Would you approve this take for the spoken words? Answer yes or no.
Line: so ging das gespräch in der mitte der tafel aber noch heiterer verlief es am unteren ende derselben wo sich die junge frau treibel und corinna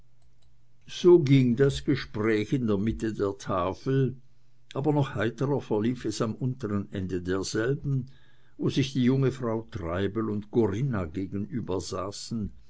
yes